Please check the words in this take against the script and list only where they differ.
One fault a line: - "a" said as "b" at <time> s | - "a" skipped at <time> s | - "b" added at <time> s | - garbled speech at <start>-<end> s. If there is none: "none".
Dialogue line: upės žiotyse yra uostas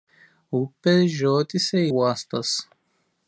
- "yra" skipped at 1.8 s